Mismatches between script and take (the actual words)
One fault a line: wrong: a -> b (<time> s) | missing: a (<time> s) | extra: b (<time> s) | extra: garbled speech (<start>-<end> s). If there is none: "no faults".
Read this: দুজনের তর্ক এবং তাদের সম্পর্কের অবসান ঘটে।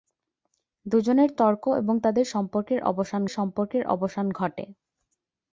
extra: সম্পর্কের অবসান (3.3 s)